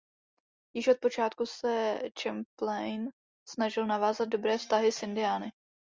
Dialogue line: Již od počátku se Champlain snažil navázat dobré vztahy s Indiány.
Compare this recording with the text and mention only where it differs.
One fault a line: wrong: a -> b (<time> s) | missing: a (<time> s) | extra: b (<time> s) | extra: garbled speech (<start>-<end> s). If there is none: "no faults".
no faults